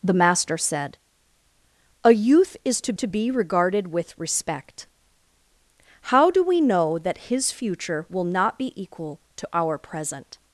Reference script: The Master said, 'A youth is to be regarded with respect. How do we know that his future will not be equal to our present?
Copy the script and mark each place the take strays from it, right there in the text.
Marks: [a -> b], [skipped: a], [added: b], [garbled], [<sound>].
The Master said, 'A youth is to [added: to] be regarded with respect. How do we know that his future will not be equal to our present?